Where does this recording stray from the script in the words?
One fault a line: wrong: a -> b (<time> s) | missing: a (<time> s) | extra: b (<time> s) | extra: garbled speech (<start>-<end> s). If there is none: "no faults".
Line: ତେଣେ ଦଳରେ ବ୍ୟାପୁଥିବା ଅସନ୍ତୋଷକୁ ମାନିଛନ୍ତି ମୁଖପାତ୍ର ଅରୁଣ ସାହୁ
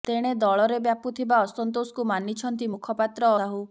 missing: ଅରୁଣ (3.3 s)